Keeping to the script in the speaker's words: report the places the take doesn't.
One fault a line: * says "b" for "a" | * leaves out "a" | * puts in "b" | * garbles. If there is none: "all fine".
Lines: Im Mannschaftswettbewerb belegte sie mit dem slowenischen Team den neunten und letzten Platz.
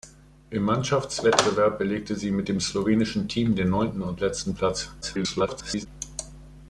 * garbles